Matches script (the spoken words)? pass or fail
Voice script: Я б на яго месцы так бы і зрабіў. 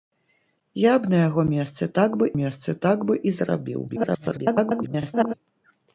fail